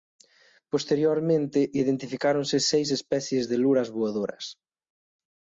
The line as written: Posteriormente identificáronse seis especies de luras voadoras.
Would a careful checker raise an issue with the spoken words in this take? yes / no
no